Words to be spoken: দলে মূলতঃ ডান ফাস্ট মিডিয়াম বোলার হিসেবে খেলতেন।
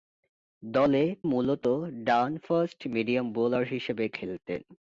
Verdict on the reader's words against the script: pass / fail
pass